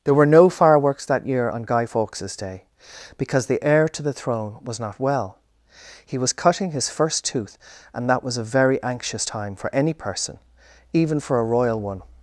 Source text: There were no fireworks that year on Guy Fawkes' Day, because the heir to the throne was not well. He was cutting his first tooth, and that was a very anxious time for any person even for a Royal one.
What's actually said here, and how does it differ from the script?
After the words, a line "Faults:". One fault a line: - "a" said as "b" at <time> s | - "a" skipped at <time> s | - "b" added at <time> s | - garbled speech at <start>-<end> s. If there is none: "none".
There were no fireworks that year on Guy Fawkes' Day, because the heir to the throne was not well. He was cutting his first tooth, and that was a very anxious time for any person even for a Royal one.
Faults:
none